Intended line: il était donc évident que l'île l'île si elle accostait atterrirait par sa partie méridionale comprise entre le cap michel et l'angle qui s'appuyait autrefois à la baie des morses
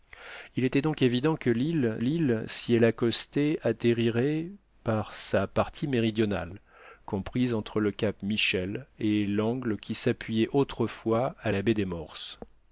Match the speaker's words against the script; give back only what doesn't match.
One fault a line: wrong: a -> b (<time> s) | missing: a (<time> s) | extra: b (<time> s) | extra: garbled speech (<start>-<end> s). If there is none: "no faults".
no faults